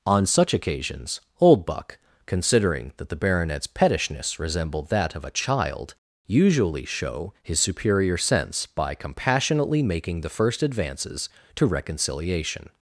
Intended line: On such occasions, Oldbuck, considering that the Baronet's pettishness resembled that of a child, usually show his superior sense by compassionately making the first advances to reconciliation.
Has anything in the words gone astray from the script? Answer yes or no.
no